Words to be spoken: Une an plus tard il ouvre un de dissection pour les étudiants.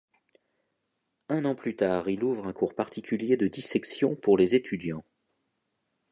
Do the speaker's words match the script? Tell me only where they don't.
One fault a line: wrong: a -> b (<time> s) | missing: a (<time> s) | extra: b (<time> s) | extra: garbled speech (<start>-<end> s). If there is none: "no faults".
wrong: Une -> Un (1.3 s)
extra: cours particulier (2.5 s)